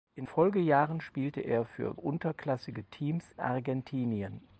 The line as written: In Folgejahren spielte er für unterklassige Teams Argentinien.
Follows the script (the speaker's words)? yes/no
yes